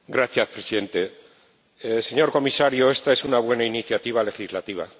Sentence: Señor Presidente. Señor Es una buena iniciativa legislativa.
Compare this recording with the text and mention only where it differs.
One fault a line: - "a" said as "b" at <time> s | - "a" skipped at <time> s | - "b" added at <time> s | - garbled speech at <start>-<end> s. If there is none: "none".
- "Comisario esta" added at 2.3 s